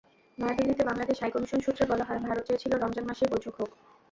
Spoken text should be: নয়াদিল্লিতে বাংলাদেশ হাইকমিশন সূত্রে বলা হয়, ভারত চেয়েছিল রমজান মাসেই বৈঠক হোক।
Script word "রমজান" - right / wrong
right